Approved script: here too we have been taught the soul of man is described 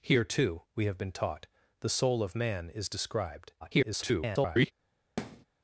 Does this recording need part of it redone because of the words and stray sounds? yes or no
yes